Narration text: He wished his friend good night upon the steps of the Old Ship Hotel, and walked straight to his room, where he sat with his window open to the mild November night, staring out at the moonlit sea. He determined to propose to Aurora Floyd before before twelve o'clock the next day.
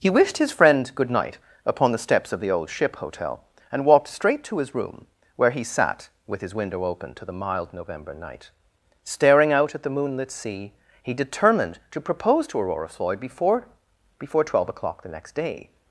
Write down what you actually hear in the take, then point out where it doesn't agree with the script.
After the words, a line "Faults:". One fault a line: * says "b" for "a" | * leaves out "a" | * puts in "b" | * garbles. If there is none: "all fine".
He wished his friend good night upon the steps of the Old Ship Hotel, and walked straight to his room, where he sat with his window open to the mild November night, staring out at the moonlit sea. He determined to propose to Aurora Floyd before before twelve o'clock the next day.
Faults:
all fine